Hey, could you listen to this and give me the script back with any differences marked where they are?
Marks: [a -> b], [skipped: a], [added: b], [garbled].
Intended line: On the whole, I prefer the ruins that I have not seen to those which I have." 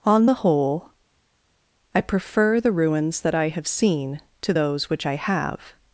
On the whole, I prefer the ruins that I have [skipped: not] seen to those which I have."